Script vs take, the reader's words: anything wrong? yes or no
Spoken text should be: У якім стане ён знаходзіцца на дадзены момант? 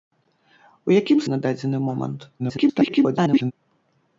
yes